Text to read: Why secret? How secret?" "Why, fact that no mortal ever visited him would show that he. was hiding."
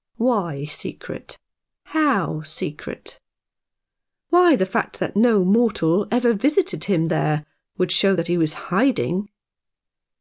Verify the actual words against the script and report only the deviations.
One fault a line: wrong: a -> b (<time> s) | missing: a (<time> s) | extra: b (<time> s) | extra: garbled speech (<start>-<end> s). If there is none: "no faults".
extra: the (4.5 s)
extra: there (7.1 s)